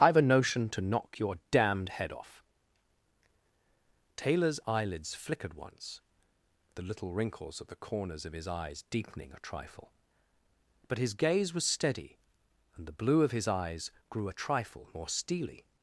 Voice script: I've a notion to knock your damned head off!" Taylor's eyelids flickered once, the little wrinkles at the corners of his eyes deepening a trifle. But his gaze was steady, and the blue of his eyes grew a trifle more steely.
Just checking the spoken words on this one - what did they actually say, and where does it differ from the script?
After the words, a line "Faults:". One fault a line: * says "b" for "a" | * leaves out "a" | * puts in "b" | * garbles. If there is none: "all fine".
I've a notion to knock your damned head off!" Taylor's eyelids flickered once, the little wrinkles at the corners of his eyes deepening a trifle. But his gaze was steady, and the blue of his eyes grew a trifle more steely.
Faults:
all fine